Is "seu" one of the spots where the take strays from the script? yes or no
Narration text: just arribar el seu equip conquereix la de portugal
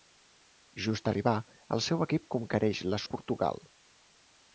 no